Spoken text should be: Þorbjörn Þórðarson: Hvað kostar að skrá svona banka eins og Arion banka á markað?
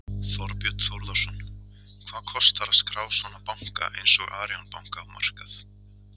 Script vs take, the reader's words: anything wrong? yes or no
no